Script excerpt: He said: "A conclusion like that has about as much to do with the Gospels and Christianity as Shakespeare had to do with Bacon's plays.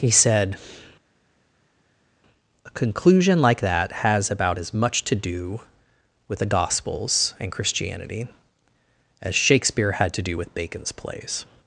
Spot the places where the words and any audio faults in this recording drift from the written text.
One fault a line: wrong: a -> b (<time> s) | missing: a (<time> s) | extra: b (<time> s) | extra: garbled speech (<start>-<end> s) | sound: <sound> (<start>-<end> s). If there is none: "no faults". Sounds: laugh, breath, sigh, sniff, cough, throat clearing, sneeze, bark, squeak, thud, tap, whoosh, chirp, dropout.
no faults